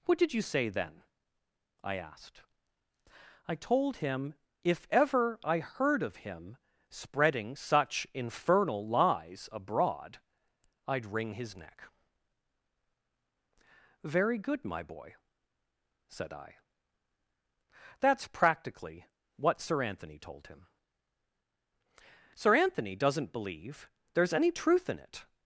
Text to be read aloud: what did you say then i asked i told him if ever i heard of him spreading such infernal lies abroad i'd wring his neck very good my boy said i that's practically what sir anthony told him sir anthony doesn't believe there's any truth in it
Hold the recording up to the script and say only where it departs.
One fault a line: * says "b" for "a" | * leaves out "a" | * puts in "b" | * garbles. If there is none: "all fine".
all fine